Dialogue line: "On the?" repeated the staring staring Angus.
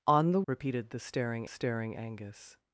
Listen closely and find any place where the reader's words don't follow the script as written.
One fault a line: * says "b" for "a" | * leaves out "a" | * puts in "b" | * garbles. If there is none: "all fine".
all fine